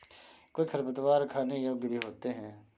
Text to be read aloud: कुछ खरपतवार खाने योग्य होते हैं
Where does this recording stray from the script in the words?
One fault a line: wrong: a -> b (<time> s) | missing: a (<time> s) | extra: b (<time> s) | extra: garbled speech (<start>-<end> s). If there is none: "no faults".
extra: भी (1.8 s)